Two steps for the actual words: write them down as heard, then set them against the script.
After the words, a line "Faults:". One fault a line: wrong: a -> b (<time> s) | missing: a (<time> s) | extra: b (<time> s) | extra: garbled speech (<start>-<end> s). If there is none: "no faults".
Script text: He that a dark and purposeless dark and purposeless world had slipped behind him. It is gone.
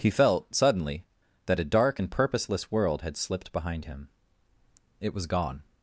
He felt, suddenly, that a dark and purposeless world had slipped behind him. It was gone.
Faults:
extra: felt suddenly (0.1 s)
missing: dark and purposeless (2.7 s)
wrong: is -> was (5.1 s)